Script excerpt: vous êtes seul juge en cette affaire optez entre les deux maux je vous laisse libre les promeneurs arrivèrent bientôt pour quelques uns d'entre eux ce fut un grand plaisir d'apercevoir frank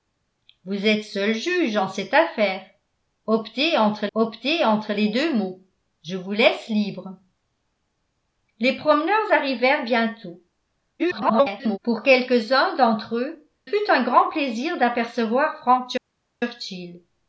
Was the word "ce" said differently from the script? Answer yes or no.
yes